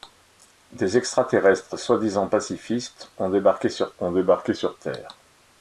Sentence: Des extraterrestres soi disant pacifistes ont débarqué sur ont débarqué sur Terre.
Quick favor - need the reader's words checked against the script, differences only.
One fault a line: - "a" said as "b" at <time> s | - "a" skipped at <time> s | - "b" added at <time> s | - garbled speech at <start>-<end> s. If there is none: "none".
none